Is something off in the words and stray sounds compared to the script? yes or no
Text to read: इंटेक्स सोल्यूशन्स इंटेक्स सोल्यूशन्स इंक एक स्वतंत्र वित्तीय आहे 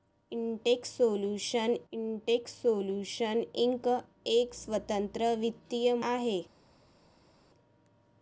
no